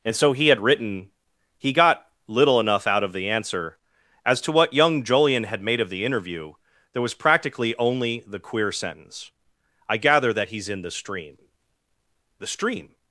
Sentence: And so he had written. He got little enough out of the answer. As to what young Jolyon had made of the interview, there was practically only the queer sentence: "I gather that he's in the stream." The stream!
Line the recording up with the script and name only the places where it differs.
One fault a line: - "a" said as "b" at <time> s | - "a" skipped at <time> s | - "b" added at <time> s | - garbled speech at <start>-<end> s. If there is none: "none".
none